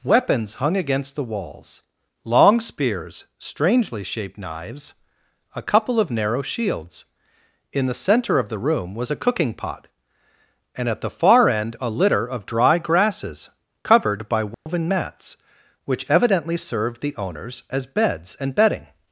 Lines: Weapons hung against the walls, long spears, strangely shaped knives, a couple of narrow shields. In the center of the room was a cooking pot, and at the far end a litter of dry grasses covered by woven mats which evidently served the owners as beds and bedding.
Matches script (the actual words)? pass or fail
pass